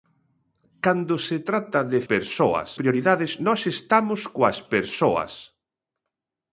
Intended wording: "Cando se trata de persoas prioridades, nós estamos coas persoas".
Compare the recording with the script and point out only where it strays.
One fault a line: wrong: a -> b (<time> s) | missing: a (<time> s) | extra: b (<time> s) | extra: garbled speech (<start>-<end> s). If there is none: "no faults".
no faults